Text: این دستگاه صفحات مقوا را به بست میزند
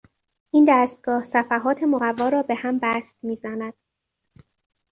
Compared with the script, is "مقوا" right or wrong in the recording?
right